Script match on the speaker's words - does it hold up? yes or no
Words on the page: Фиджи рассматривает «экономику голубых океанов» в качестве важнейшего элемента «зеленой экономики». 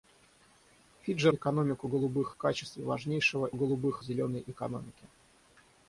no